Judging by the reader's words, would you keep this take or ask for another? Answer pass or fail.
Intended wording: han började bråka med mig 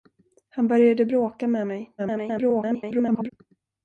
fail